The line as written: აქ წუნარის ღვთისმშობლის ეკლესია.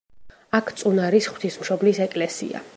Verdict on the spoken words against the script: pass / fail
pass